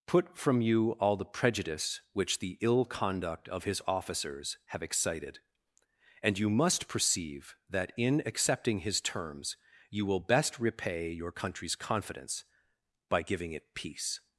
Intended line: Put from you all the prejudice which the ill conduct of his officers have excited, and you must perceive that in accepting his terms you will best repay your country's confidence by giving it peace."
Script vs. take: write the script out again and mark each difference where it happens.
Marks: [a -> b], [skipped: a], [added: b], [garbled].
Put from you all the prejudice which the ill conduct of his officers have excited, and you must perceive that in accepting his terms you will best repay your country's confidence by giving it peace."